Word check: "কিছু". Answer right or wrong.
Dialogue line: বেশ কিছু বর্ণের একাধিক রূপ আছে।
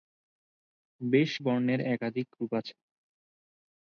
wrong